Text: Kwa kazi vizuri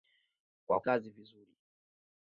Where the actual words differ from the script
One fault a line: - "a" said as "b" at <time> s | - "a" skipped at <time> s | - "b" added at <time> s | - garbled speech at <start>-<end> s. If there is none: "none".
none